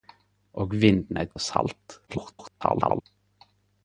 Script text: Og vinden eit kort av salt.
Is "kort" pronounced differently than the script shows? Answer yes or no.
yes